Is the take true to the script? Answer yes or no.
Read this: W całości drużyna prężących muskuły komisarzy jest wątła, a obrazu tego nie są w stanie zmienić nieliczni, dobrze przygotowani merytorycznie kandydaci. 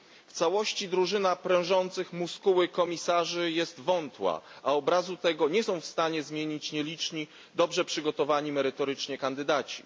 yes